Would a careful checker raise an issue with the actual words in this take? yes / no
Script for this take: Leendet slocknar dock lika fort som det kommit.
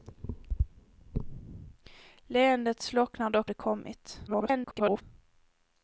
yes